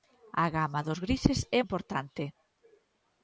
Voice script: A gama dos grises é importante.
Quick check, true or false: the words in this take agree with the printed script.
true